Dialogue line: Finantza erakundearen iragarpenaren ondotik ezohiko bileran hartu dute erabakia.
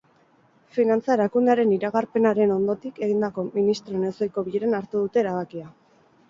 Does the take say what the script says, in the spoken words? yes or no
no